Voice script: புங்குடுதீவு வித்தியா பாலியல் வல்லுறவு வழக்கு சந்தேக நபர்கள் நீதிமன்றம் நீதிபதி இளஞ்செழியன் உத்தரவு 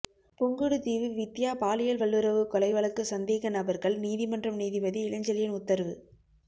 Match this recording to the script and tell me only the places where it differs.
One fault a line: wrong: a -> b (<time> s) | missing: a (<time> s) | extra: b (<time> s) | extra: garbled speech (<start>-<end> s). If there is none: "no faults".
extra: கொலை (2.5 s)